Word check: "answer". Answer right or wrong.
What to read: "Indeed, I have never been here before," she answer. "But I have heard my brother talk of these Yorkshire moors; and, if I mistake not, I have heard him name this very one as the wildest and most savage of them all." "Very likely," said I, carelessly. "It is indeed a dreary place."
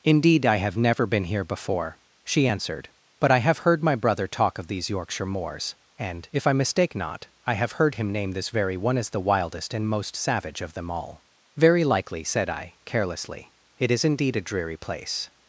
wrong